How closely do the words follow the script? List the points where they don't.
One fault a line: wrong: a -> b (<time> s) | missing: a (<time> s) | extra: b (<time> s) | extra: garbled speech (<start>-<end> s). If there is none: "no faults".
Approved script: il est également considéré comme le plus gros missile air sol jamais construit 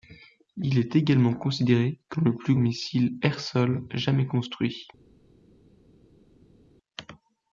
missing: gros (2.5 s)